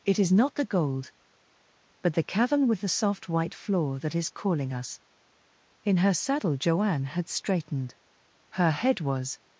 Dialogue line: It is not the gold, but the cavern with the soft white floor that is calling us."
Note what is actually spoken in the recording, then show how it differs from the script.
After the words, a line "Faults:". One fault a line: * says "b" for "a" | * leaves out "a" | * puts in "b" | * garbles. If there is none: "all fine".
It is not the gold, but the cavern with the soft white floor that is calling us." In her saddle Joanne had straightened. Her head was
Faults:
* puts in "In her saddle Joanne had straightened Her head was"